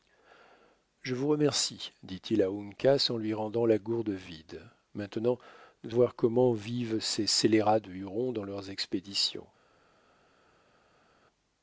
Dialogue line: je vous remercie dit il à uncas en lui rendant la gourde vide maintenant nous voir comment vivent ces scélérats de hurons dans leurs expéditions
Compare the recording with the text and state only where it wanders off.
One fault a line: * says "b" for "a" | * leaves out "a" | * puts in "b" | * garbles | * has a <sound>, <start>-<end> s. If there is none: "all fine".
all fine